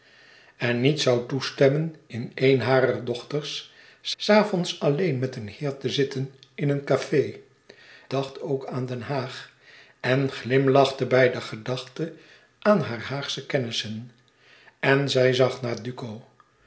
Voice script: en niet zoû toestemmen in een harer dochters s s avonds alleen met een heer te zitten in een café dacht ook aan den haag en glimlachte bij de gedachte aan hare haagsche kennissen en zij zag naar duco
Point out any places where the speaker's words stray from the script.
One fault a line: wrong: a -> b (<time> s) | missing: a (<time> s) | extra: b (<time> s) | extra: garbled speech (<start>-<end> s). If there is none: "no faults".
no faults